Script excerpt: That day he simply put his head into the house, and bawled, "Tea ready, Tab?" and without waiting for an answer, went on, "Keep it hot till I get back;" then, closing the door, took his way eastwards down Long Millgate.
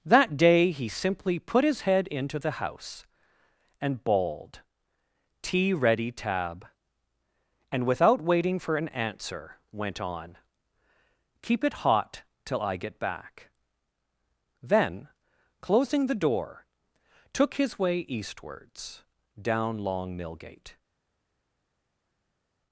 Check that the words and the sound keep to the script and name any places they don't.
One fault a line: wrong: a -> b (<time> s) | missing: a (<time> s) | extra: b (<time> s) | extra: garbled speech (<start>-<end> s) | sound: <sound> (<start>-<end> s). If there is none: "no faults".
no faults